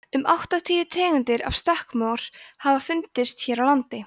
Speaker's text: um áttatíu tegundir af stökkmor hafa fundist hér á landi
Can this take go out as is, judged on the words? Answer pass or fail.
pass